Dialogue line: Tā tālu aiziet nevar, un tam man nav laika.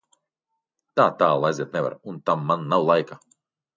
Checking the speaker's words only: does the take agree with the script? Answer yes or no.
yes